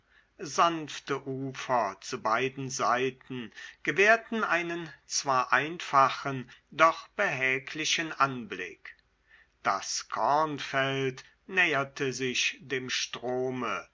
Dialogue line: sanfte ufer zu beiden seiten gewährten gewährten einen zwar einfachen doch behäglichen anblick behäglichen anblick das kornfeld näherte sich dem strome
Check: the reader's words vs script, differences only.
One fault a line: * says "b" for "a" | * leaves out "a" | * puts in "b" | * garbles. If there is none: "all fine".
* leaves out "gewährten"
* leaves out "behäglichen anblick"